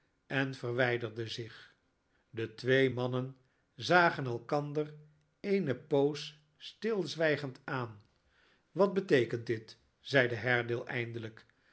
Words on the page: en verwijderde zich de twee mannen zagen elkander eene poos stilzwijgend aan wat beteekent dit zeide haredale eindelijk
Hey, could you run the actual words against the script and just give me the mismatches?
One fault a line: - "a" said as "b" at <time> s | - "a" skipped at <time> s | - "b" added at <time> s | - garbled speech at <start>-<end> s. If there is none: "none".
none